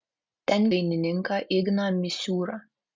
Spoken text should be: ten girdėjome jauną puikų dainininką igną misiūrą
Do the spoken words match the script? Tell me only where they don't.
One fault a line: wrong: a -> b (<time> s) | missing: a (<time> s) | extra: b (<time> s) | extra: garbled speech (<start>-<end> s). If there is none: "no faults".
missing: girdėjome jauną puikų (0.6 s)